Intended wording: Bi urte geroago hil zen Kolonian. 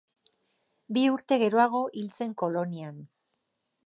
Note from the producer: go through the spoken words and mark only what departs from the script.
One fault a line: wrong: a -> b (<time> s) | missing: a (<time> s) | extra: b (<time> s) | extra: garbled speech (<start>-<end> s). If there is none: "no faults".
no faults